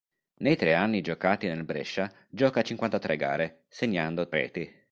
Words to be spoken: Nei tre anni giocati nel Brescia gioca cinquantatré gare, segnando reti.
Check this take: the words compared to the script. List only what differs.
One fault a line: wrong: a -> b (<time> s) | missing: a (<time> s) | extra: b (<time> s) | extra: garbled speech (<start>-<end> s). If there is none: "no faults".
no faults